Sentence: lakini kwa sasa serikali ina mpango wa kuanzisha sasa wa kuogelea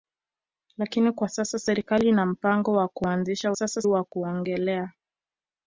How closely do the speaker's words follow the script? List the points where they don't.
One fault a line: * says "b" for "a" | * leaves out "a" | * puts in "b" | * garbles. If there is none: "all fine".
all fine